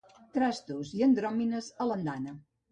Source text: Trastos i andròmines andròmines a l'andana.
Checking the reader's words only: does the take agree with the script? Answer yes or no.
no